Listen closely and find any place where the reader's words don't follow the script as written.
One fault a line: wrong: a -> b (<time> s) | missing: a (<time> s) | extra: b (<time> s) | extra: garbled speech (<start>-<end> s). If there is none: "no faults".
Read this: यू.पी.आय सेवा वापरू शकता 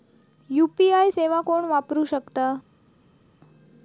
extra: कोण (1.5 s)